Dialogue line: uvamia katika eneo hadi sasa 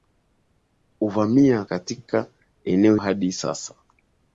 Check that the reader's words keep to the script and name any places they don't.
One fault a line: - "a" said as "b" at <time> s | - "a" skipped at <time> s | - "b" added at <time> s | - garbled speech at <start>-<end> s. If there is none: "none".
none